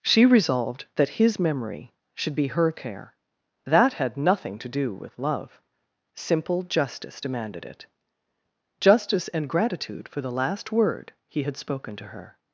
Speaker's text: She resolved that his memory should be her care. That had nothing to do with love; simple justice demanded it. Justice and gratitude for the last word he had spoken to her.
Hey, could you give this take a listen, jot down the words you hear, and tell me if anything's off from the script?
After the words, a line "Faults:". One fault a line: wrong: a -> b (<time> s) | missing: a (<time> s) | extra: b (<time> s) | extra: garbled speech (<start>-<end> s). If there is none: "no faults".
She resolved that his memory should be her care. That had nothing to do with love; simple justice demanded it. Justice and gratitude for the last word he had spoken to her.
Faults:
no faults